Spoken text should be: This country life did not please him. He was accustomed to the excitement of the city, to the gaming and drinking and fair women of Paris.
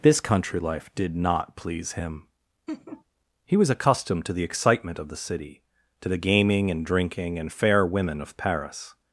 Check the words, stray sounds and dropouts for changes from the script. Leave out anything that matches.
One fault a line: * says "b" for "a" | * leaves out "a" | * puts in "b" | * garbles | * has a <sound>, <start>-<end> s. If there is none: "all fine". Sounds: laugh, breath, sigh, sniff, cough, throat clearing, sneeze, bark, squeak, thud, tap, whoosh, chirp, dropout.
* has a laugh, 2.7-3.0 s